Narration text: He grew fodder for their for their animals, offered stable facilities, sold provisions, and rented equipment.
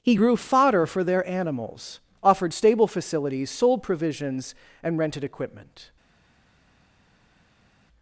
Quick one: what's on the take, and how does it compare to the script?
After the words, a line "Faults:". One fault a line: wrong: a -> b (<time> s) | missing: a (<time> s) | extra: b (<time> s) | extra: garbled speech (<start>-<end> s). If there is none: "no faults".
He grew fodder for their animals, offered stable facilities, sold provisions, and rented equipment.
Faults:
missing: for their (1.3 s)